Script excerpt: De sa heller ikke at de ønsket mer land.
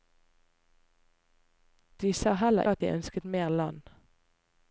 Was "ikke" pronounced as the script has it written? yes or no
no